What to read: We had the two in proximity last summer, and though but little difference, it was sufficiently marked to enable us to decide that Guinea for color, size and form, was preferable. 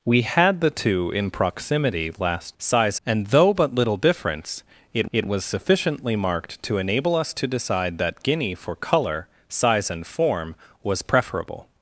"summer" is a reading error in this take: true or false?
true